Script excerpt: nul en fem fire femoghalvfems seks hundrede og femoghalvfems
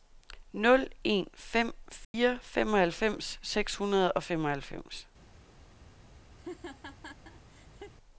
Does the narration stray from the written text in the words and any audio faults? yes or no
yes